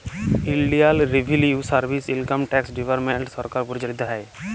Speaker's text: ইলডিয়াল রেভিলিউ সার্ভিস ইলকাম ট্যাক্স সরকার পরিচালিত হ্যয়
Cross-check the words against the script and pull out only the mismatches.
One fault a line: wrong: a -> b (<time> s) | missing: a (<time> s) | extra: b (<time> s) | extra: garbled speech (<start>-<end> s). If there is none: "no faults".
extra: ডিপার্টমেল্ট (2.8 s)